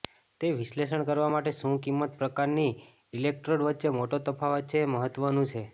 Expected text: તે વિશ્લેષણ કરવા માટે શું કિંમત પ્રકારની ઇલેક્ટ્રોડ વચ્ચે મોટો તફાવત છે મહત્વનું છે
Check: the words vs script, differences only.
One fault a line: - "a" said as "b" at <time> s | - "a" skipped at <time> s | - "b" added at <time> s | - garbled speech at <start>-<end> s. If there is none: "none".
none